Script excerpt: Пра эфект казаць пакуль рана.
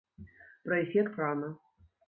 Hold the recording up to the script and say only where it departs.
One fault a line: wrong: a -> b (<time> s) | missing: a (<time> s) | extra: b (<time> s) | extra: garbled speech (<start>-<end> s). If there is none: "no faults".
missing: казаць пакуль (1.2 s)